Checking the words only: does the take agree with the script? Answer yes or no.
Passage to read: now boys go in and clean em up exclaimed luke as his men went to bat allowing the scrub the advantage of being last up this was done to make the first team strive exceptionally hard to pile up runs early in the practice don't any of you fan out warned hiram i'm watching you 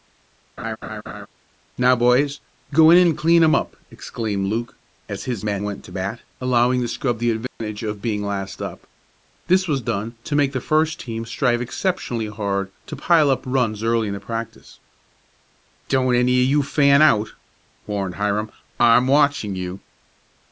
yes